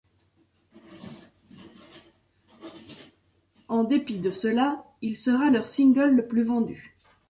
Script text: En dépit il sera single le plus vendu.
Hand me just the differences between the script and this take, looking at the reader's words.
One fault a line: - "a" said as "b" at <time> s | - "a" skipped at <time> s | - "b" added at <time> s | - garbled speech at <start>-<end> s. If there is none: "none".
- "de cela" added at 4.2 s
- "leur" added at 5.5 s